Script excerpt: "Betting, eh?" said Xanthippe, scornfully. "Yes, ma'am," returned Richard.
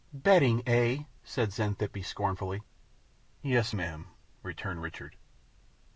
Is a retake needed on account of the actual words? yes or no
no